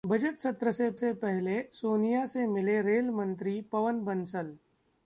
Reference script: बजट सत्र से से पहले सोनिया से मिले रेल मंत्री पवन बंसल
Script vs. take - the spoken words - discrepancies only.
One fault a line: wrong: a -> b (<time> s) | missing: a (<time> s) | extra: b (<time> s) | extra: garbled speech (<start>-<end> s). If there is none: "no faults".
no faults